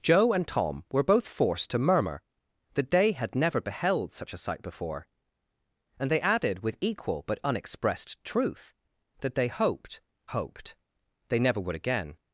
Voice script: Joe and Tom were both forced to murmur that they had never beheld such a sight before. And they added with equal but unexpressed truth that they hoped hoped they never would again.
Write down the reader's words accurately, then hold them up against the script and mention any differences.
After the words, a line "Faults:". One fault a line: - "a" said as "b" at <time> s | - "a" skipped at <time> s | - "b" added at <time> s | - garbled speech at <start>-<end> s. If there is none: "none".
Joe and Tom were both forced to murmur that they had never beheld such a sight before. And they added with equal but unexpressed truth that they hoped hoped they never would again.
Faults:
none